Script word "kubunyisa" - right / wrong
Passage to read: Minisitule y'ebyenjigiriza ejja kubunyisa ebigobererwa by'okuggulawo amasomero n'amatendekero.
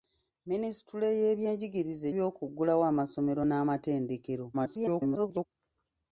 wrong